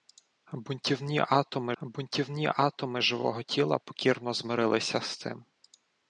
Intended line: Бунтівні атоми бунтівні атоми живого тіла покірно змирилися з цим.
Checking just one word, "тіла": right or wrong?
right